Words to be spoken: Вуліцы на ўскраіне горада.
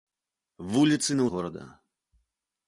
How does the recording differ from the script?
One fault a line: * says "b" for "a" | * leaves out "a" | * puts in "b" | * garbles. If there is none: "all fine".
* leaves out "ўскраіне"